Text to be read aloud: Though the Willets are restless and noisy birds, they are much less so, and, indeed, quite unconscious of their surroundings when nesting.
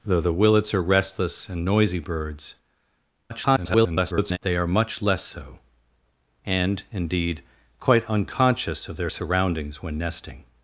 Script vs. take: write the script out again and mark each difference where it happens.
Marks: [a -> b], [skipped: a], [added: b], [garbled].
Though the Willets are restless and noisy birds, [garbled] they are much less so, and, indeed, quite unconscious of their surroundings when nesting.